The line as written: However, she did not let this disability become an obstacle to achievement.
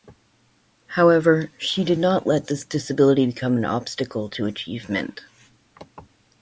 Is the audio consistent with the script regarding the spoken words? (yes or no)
yes